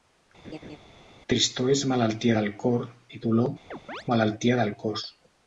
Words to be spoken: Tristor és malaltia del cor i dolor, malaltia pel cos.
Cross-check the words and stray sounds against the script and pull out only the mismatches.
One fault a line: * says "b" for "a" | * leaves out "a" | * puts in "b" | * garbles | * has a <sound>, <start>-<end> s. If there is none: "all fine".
* has a laugh, 0.4-0.8 s
* has a chirp, 3.7-4.0 s
* says "del" for "pel"